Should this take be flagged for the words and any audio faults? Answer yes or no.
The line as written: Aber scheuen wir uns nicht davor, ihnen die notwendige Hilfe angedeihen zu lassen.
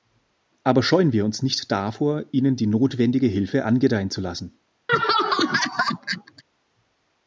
yes